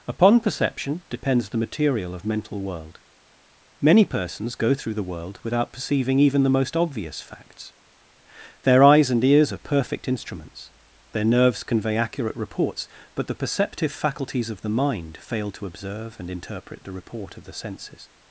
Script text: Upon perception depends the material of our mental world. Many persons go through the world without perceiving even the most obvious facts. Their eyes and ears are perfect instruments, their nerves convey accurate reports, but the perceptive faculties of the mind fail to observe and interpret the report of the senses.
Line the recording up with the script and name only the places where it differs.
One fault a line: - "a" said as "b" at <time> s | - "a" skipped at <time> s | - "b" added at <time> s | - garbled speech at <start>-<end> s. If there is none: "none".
- "our" skipped at 2.2 s